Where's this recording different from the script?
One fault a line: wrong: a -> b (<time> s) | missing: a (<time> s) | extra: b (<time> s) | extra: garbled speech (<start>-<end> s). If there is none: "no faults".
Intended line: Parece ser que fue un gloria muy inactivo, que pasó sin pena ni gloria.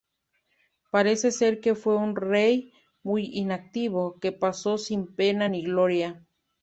wrong: gloria -> rey (2.1 s)